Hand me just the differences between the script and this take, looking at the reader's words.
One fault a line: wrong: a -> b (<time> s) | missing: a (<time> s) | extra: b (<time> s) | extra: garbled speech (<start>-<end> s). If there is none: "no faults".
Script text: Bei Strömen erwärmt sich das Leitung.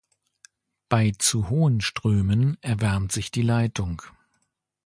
extra: zu hohen (1.1 s)
wrong: das -> die (3.3 s)